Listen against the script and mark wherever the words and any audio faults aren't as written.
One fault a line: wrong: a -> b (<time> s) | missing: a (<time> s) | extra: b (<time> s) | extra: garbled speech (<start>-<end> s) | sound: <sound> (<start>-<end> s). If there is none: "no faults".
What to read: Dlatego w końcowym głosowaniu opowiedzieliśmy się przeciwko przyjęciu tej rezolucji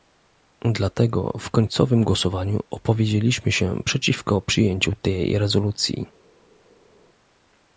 no faults